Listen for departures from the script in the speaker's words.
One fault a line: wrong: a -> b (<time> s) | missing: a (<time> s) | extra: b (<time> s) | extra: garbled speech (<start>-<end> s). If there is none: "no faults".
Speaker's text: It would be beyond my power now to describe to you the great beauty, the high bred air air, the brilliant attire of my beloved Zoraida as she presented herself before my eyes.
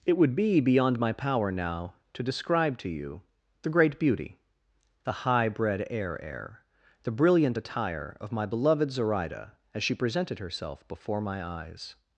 no faults